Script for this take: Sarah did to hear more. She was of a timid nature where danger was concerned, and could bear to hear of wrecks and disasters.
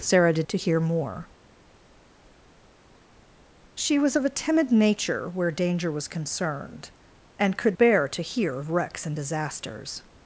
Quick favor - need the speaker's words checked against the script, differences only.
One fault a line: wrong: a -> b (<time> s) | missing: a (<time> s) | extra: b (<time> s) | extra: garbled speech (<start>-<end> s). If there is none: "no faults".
no faults